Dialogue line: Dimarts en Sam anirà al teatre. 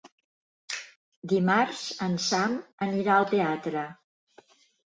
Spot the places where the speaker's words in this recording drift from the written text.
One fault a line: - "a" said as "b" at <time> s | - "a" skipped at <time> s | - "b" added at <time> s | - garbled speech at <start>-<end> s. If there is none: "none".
none